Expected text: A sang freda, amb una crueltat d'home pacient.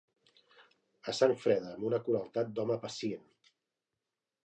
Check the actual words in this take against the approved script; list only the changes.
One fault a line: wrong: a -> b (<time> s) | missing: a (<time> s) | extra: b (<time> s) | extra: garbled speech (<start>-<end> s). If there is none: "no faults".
no faults